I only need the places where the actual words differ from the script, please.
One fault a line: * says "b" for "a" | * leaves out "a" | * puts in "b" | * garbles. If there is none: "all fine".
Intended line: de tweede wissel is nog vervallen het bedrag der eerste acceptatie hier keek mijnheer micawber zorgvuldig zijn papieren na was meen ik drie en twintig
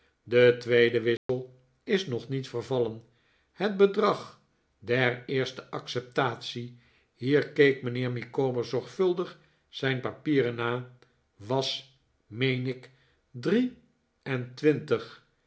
* puts in "niet"